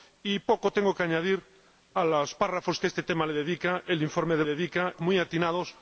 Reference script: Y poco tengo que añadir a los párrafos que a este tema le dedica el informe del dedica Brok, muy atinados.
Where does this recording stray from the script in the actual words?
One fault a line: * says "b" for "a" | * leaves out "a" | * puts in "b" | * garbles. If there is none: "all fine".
all fine